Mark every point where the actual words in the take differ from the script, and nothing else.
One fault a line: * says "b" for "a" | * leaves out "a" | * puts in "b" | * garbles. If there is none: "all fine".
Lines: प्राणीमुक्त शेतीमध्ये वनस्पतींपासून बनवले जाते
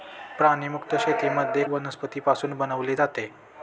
all fine